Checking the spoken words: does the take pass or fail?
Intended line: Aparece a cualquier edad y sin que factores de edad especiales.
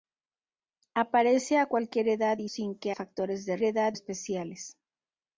pass